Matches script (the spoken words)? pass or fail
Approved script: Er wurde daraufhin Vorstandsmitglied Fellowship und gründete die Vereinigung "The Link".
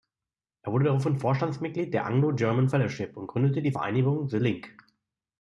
fail